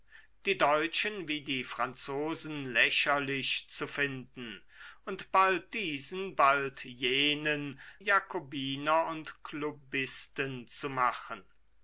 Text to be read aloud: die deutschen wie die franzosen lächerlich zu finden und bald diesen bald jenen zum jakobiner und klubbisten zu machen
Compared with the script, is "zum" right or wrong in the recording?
wrong